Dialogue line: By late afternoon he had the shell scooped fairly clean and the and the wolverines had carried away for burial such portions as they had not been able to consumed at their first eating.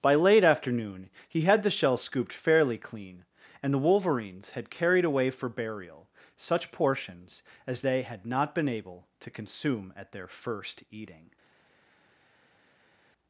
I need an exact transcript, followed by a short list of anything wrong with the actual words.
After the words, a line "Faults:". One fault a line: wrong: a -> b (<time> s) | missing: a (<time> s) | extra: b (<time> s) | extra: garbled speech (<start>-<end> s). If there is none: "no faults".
By late afternoon he had the shell scooped fairly clean and the wolverines had carried away for burial such portions as they had not been able to consume at their first eating.
Faults:
missing: and the (3.8 s)
wrong: consumed -> consume (9.3 s)